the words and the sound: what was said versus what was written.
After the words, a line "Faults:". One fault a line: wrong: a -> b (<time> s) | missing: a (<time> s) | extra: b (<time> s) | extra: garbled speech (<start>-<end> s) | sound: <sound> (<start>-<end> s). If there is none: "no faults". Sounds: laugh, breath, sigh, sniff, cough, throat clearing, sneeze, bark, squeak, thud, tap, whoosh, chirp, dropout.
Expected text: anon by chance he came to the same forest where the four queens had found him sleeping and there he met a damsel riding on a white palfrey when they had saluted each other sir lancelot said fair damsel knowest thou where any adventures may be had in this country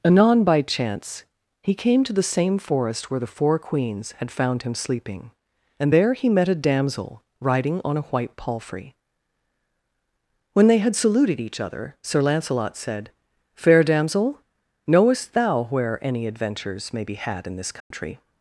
anon by chance he came to the same forest where the four queens had found him sleeping and there he met a damsel riding on a white palfrey when they had saluted each other sir lancelot said fair damsel knowest thou where any adventures may be had in this country
Faults:
sound: dropout (17.8-17.9 s)